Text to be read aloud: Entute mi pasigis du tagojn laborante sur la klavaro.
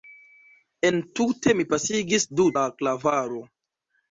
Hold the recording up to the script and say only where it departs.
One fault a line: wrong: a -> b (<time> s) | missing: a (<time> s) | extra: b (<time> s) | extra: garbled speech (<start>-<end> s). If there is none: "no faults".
missing: tagojn laborante sur (2.5 s)